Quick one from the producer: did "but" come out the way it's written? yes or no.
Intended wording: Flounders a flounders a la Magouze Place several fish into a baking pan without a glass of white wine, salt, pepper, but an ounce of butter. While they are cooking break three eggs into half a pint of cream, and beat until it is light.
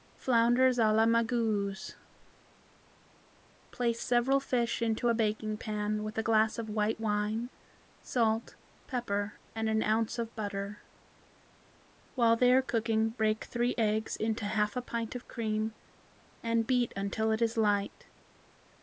no